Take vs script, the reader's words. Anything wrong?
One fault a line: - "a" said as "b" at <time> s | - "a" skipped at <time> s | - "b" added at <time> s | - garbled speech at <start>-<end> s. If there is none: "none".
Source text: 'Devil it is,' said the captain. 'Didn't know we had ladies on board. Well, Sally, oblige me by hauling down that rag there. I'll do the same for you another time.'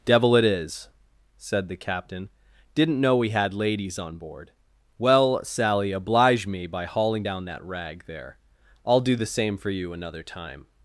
none